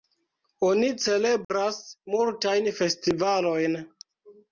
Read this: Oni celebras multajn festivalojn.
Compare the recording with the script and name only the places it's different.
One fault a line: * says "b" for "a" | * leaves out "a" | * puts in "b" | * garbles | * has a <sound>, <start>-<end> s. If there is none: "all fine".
* has a dropout, 1.4-1.5 s